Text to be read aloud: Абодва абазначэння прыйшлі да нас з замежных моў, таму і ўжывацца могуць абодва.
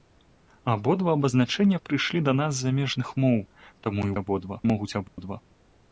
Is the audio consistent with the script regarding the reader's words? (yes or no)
no